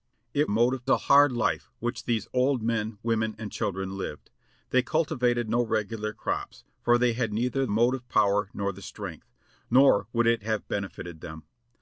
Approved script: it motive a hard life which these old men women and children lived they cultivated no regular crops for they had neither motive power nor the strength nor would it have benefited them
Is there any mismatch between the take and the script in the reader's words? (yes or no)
no